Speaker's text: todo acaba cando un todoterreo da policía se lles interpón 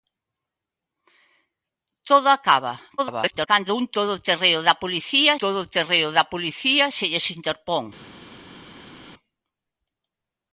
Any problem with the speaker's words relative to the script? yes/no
yes